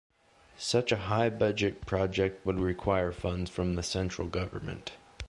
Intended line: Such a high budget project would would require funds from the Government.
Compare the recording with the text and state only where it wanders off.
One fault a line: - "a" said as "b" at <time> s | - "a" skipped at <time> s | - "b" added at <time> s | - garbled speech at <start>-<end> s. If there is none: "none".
- "would" skipped at 2.6 s
- "Central" added at 3.8 s